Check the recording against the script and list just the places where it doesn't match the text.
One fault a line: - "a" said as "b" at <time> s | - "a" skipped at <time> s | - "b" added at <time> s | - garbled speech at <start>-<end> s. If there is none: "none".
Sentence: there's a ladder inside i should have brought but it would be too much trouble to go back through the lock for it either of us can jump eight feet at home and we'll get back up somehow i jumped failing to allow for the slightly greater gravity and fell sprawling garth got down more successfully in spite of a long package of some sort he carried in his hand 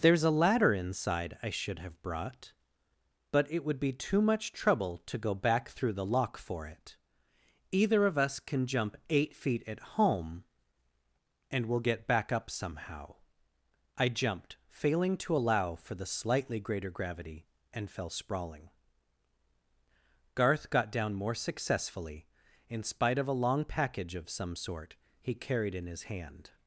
none